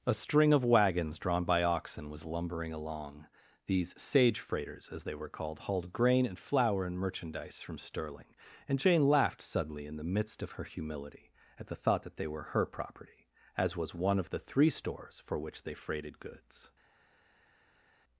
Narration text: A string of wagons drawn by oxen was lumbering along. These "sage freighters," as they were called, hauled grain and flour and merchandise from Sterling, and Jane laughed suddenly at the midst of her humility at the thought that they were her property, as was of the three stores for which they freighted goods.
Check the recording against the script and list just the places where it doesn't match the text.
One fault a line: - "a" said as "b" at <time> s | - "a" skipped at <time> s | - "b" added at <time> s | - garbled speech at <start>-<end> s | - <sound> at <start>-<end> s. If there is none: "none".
- "at" said as "in" at 9.8 s
- "one" added at 13.9 s